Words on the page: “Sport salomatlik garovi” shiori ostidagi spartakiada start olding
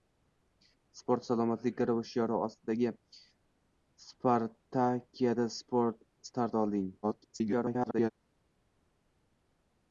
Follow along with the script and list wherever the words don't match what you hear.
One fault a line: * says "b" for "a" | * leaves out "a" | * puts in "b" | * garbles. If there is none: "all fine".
* garbles